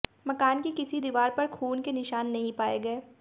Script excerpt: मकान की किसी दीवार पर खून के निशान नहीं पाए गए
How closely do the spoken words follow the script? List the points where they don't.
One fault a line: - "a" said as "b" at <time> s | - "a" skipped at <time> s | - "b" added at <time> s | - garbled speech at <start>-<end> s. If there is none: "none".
none